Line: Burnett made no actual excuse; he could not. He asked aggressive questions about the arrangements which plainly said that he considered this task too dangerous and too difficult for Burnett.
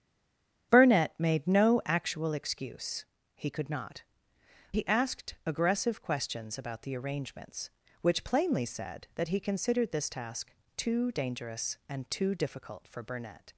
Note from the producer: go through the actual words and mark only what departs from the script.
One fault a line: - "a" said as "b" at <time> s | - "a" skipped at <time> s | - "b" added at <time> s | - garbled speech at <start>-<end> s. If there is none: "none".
none